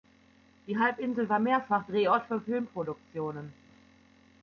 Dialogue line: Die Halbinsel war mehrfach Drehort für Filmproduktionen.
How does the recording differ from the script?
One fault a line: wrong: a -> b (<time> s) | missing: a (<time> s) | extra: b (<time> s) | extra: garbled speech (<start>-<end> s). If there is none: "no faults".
no faults